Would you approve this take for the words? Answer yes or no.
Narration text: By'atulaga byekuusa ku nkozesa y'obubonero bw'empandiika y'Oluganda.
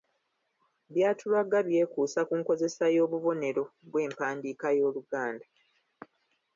yes